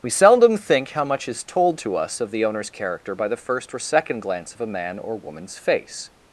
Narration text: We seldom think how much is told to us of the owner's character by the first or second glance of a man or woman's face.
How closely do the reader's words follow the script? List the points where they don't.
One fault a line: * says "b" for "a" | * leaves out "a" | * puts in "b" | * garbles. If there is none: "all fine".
all fine